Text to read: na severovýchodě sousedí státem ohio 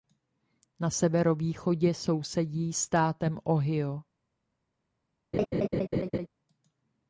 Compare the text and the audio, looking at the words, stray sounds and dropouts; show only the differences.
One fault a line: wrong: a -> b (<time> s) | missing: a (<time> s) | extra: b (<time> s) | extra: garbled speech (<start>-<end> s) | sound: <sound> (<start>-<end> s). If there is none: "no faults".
sound: laugh (5.3-6.3 s)